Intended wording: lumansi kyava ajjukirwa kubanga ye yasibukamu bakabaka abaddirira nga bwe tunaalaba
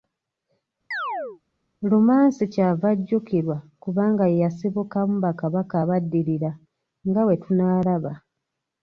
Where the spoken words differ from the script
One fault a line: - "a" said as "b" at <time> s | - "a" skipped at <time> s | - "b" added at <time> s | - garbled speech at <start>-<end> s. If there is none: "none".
none